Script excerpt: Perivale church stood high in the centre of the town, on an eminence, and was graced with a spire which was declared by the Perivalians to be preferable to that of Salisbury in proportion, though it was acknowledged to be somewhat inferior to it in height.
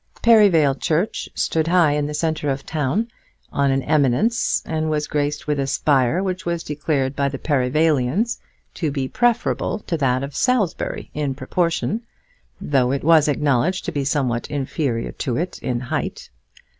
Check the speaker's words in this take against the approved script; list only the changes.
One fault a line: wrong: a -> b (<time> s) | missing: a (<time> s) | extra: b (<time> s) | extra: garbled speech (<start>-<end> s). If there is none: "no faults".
no faults